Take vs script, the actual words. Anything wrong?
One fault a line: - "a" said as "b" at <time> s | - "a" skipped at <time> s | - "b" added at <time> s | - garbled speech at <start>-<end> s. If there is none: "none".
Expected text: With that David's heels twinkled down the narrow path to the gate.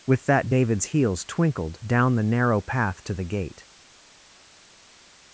none